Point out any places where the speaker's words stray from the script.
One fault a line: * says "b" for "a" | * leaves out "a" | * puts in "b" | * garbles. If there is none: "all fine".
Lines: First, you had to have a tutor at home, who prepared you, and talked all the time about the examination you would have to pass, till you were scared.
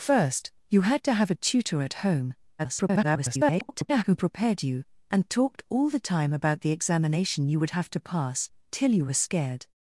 * garbles